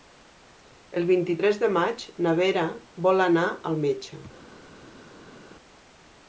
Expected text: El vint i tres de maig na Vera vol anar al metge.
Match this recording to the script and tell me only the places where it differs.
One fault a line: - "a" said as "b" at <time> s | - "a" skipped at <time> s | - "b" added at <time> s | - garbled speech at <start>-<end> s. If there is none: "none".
none